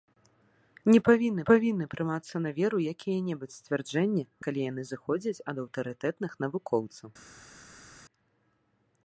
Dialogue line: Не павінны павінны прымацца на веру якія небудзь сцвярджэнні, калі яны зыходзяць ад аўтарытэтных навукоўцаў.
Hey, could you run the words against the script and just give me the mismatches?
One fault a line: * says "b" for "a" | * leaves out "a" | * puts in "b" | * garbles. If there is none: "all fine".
all fine